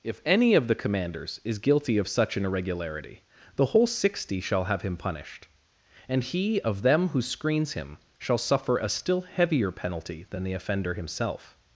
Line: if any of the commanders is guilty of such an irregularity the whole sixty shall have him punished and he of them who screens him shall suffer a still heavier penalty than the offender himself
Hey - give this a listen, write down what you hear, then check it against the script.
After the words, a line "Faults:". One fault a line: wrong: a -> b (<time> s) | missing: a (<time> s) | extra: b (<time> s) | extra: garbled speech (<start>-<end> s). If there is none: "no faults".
if any of the commanders is guilty of such an irregularity the whole sixty shall have him punished and he of them who screens him shall suffer a still heavier penalty than the offender himself
Faults:
no faults